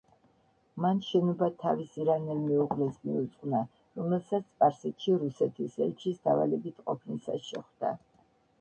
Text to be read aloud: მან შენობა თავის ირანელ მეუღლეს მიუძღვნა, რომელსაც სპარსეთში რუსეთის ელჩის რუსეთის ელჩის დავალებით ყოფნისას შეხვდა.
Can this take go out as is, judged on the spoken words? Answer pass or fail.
fail